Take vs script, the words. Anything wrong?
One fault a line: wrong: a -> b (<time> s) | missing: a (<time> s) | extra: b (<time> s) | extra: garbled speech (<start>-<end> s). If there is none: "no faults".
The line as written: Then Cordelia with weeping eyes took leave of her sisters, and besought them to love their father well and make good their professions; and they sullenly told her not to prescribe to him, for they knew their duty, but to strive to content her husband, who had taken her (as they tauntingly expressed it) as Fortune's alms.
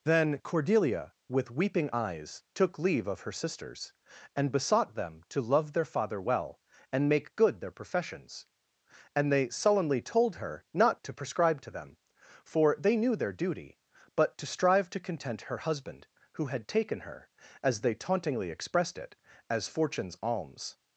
wrong: him -> them (11.7 s)